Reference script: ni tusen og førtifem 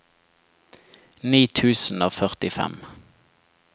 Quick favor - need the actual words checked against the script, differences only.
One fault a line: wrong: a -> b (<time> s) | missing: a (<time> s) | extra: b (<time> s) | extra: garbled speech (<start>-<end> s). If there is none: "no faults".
no faults